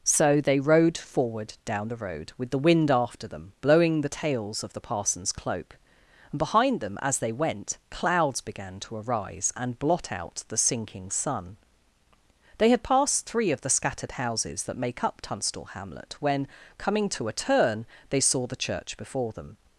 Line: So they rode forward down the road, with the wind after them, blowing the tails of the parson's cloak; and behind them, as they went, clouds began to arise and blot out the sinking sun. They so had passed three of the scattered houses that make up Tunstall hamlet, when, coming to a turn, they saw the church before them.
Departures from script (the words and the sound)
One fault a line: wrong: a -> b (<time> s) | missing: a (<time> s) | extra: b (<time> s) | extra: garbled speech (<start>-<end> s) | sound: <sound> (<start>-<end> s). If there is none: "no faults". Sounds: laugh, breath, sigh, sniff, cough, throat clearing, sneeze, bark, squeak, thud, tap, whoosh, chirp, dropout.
missing: so (12.7 s)